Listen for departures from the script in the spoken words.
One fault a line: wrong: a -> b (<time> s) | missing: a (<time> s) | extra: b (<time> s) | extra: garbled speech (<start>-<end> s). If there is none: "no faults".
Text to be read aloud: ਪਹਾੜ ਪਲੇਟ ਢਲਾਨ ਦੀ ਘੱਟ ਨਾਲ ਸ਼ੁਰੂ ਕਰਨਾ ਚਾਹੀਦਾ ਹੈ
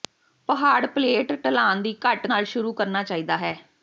no faults